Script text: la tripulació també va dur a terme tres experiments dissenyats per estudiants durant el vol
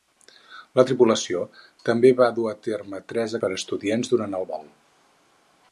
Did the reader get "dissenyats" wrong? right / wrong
wrong